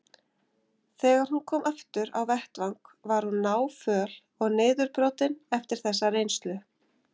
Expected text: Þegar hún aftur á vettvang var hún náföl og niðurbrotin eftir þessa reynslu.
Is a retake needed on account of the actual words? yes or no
yes